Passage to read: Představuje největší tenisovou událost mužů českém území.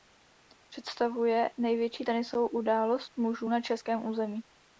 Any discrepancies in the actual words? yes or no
yes